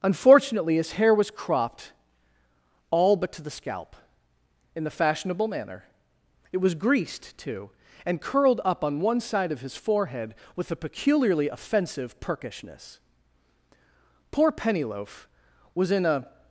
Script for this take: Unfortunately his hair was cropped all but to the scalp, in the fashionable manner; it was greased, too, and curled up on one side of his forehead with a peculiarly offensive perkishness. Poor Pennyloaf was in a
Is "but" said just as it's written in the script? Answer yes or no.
yes